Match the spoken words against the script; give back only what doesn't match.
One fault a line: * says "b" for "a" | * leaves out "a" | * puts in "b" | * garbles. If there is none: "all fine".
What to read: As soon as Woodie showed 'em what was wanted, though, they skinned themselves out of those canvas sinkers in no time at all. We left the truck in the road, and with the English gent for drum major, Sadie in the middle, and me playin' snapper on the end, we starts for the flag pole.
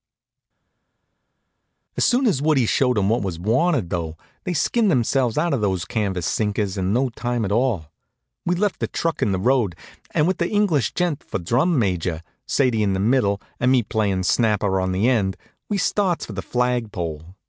all fine